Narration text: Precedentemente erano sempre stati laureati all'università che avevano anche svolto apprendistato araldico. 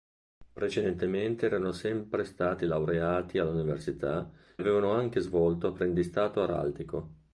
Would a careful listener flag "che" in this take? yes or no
yes